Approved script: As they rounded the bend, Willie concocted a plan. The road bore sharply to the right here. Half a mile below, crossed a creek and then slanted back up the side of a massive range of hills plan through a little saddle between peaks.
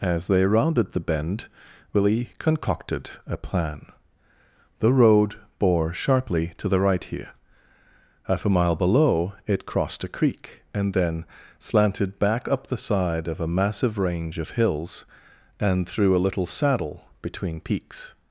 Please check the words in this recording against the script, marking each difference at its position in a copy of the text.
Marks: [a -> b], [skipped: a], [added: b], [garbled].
As they rounded the bend, Willie concocted a plan. The road bore sharply to the right here. Half a mile below, [added: it] crossed a creek and then slanted back up the side of a massive range of hills [plan -> and] through a little saddle between peaks.